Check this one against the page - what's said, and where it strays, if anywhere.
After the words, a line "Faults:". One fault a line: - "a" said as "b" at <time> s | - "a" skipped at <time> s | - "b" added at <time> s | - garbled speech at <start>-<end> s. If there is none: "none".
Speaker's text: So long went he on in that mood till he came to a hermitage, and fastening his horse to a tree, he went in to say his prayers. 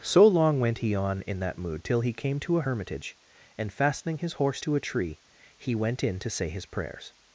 So long went he on in that mood till he came to a hermitage, and fastening his horse to a tree, he went in to say his prayers.
Faults:
none